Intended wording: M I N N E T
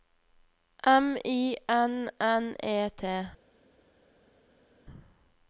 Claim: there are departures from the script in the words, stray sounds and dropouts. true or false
false